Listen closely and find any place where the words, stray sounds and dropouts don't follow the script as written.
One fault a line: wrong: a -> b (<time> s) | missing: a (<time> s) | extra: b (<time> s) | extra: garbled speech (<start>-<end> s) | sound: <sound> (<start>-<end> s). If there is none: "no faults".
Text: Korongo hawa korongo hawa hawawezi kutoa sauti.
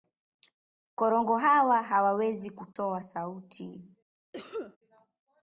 missing: korongo hawa (1.8 s)
sound: dropout (2.7-2.8 s)
sound: cough (4.3-4.8 s)